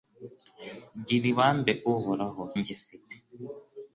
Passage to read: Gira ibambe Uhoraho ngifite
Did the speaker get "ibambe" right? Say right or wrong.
right